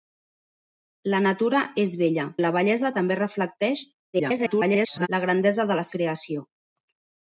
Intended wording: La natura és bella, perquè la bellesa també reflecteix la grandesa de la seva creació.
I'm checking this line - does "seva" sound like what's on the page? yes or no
no